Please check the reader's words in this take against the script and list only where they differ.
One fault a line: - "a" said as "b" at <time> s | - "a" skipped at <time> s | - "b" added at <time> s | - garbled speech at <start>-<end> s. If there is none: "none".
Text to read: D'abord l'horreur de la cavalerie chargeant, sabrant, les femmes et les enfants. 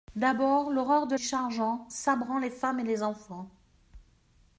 - "la cavalerie" skipped at 1.1 s